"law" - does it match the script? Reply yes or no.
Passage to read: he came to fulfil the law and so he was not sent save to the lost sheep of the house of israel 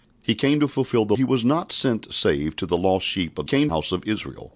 no